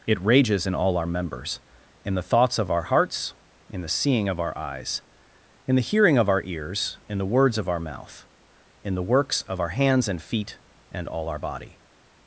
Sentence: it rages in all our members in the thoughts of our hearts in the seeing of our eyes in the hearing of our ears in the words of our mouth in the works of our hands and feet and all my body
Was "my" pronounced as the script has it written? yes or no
no